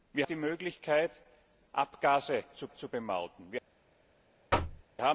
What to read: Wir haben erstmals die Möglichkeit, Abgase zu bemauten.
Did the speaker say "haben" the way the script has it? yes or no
no